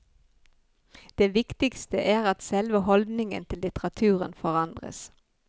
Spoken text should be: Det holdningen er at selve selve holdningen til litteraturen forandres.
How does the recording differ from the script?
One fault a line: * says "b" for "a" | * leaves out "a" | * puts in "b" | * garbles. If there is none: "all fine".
* says "viktigste" for "holdningen"
* leaves out "selve"